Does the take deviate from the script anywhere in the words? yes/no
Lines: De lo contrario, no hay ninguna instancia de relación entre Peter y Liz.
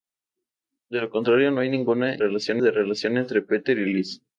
yes